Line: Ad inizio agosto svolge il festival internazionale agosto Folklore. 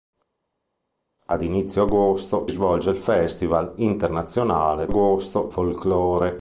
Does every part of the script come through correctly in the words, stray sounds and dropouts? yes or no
yes